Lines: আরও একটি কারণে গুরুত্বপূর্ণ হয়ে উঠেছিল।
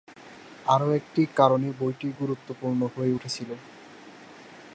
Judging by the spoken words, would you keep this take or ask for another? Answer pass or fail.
fail